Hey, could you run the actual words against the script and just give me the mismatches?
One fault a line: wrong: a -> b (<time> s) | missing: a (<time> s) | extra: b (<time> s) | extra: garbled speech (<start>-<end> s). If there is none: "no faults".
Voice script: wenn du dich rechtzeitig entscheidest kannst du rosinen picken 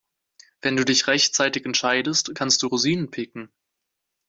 no faults